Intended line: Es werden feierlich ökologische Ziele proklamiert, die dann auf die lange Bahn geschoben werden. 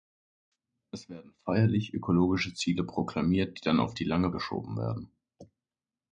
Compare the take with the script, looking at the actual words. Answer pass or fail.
fail